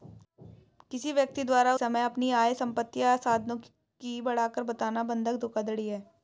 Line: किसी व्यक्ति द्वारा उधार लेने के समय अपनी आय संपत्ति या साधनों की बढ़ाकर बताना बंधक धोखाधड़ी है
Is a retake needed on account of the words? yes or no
yes